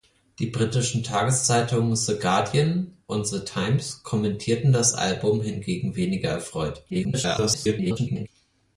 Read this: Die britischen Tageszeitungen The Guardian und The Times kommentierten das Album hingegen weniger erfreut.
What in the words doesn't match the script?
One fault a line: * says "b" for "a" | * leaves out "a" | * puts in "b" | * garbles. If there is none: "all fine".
* garbles